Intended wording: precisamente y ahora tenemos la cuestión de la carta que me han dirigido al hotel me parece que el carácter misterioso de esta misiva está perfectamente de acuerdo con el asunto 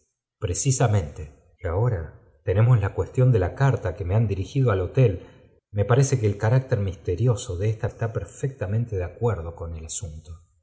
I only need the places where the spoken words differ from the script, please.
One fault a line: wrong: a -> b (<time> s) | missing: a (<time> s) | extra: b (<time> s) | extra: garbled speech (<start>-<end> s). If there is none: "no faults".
missing: misiva (7.9 s)